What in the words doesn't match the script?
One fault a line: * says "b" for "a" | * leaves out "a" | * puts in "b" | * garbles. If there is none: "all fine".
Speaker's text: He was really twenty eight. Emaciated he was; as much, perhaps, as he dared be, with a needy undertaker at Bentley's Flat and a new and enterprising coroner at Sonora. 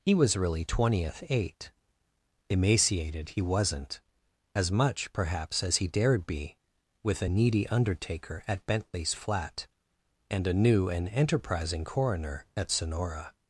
* says "twentieth" for "twenty"
* says "wasn't" for "was"